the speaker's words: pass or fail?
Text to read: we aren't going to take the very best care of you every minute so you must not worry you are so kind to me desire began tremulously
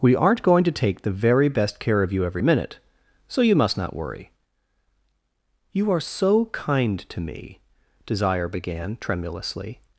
pass